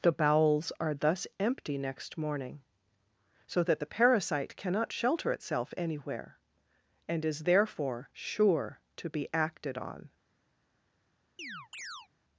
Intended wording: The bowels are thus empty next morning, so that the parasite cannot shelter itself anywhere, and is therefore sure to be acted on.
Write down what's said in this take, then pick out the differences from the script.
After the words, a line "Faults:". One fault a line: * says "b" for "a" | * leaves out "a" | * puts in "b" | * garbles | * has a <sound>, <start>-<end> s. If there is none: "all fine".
The bowels are thus empty next morning, so that the parasite cannot shelter itself anywhere, and is therefore sure to be acted on.
Faults:
* has a chirp, 11.4-12.1 s